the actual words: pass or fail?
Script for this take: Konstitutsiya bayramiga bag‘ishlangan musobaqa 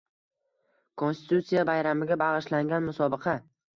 pass